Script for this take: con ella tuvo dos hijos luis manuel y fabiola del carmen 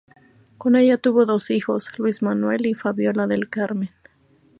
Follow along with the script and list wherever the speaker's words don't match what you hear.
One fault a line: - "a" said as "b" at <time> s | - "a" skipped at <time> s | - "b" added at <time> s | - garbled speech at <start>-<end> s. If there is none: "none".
none